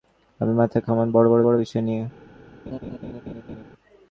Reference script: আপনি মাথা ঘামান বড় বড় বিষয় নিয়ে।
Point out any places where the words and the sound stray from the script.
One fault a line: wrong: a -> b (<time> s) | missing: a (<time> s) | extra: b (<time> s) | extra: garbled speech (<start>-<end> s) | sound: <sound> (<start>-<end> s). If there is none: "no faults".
extra: বড় (1.4 s)
sound: laugh (2.7-3.6 s)